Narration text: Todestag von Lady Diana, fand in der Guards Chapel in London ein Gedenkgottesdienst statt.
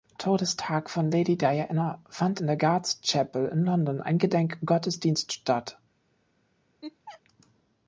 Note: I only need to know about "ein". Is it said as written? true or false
true